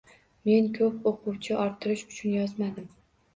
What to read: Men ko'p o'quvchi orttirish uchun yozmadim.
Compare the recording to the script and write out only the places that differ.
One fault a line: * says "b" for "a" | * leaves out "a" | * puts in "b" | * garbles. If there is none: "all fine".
all fine